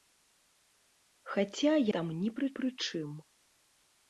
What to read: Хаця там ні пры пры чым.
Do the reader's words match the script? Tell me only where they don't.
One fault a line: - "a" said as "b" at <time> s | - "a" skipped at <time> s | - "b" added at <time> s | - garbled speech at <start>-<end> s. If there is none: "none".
none